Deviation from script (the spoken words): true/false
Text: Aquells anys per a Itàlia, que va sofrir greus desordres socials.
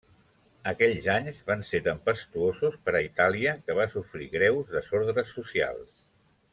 true